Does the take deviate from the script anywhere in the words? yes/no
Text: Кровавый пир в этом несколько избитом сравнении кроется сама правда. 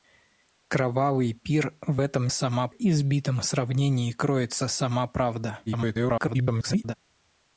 yes